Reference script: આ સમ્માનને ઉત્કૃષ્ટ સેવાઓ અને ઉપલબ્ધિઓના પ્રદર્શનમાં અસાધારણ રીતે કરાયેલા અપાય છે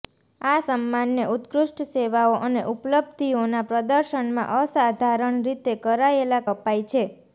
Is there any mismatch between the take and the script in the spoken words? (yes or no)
no